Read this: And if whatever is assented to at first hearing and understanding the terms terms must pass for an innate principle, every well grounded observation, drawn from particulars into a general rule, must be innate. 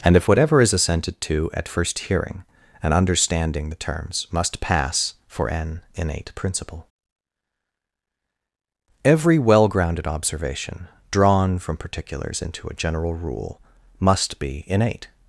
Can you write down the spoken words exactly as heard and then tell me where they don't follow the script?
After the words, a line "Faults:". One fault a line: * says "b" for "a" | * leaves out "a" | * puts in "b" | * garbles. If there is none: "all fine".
And if whatever is assented to at first hearing and understanding the terms must pass for an innate principle, every well grounded observation, drawn from particulars into a general rule, must be innate.
Faults:
* leaves out "terms"